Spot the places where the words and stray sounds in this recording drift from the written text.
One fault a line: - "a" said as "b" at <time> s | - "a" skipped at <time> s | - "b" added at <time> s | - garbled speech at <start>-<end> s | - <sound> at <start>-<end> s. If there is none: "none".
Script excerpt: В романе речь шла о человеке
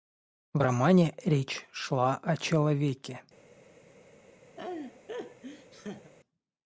- laugh at 4.6-6.1 s